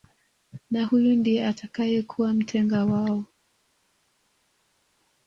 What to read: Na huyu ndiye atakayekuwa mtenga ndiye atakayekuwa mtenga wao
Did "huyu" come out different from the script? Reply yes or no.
no